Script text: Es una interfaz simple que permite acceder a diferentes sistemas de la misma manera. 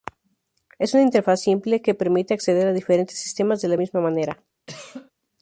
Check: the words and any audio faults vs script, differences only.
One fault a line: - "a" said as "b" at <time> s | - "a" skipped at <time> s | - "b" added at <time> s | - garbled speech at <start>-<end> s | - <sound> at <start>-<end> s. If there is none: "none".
- cough at 4.7-5.1 s